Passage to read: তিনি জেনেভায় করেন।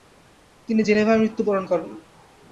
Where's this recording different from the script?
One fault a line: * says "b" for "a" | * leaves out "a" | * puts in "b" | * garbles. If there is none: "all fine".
* puts in "মৃত্যুবরণ"